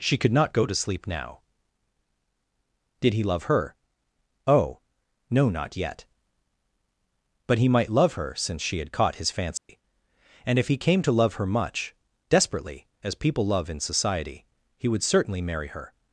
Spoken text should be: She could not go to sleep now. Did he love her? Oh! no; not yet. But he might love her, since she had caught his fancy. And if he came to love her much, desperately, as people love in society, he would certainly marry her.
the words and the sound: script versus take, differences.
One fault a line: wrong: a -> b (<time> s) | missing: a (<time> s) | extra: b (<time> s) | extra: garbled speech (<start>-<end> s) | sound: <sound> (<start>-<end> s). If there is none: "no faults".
sound: dropout (9.6-9.7 s)